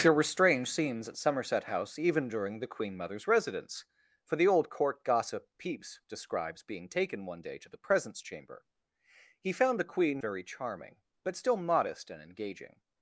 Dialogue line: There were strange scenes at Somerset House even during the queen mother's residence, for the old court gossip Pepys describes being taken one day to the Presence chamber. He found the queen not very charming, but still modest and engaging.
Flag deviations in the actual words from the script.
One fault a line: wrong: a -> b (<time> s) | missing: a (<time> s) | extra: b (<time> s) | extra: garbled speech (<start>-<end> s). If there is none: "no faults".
missing: not (10.2 s)